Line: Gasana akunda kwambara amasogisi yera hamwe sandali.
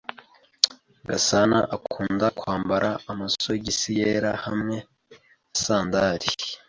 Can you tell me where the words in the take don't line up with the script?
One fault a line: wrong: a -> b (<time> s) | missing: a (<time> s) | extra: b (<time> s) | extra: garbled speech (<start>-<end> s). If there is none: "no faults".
no faults